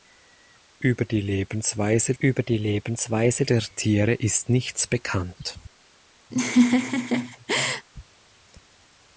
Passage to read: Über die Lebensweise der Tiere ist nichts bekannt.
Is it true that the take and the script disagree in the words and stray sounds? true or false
true